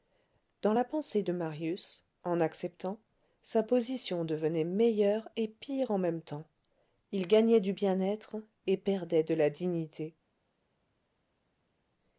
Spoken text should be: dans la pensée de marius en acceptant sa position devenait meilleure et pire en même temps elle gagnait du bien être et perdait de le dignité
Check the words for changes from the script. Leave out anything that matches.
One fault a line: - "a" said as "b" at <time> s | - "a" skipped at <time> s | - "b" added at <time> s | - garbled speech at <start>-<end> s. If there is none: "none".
- "elle" said as "il" at 7.1 s
- "le" said as "la" at 9.3 s